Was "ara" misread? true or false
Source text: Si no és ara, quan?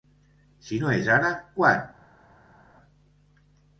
false